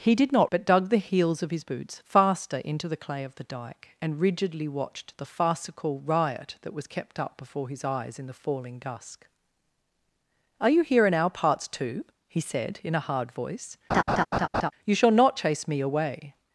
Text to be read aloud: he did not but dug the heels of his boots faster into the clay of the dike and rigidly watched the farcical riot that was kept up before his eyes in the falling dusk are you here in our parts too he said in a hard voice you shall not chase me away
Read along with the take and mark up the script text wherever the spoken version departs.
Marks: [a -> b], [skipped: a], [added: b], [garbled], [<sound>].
he did not but dug the heels of his boots faster into the clay of the dike and rigidly watched the farcical riot that was kept up before his eyes in the falling dusk are you here in our parts too he said in a hard voice [laugh] you shall not chase me away